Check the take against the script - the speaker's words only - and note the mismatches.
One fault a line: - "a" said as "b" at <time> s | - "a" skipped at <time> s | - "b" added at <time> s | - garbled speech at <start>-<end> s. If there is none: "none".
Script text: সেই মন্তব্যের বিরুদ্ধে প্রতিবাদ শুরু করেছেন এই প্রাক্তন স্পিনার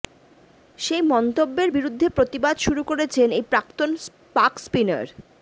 - "পাক" added at 4.4 s